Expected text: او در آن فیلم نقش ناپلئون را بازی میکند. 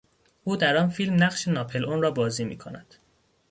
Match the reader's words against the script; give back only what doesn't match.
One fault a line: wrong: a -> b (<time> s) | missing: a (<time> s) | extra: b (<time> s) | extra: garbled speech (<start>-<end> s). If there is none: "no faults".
no faults